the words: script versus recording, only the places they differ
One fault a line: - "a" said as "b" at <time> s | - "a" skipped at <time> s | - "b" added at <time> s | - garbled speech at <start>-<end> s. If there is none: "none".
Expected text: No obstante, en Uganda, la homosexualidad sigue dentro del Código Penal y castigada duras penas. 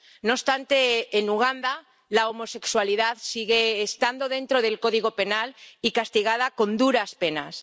- "estando" added at 3.8 s
- "con" added at 6.5 s